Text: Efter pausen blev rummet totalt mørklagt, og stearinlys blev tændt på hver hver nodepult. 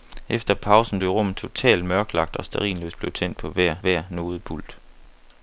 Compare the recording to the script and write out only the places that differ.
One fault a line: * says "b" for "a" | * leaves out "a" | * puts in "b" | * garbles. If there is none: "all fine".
all fine